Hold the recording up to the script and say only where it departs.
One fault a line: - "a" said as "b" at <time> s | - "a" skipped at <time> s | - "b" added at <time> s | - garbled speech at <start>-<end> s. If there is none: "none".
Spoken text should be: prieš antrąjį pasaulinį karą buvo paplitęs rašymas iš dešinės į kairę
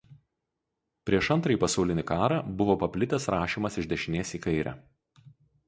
none